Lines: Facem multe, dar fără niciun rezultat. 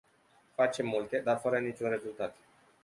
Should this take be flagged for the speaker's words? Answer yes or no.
no